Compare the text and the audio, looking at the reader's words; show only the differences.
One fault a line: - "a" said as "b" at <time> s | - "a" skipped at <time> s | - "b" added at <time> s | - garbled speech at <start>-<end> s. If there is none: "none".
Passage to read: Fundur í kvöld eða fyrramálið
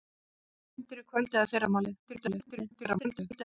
- garbled speech at 2.1-3.4 s